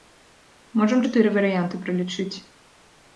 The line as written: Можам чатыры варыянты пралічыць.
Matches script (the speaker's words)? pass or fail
pass